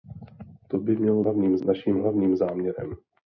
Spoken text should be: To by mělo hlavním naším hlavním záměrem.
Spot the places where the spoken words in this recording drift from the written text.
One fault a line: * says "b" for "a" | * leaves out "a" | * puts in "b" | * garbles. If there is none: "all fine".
all fine